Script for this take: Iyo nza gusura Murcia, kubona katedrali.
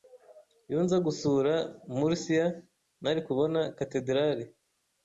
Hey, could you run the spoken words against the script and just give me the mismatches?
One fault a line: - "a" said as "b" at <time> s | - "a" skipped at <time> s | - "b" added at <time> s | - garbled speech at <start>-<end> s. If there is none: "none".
- "nari" added at 3.0 s